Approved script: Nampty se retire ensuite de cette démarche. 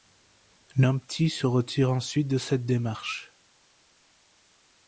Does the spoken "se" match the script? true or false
true